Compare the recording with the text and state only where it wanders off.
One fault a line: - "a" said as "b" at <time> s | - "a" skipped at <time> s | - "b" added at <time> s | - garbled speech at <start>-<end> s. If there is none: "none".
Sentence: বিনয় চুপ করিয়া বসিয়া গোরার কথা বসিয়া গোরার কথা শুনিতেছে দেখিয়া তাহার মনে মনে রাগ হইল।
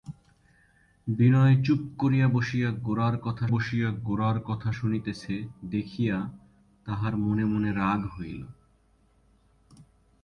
none